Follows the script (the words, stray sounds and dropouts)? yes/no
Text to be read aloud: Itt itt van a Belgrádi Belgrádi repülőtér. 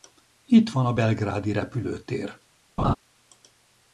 no